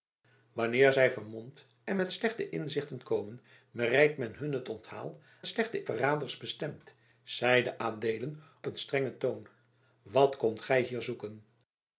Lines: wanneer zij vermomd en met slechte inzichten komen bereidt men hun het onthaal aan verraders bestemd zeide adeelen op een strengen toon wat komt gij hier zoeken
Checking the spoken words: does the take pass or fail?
fail